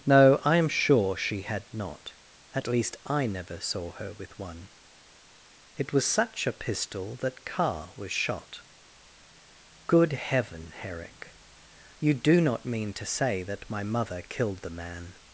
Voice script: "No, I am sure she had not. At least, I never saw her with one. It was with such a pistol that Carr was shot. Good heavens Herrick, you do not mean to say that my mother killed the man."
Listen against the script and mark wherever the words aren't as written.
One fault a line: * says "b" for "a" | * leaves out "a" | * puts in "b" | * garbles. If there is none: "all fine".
* leaves out "with"
* says "heaven" for "heavens"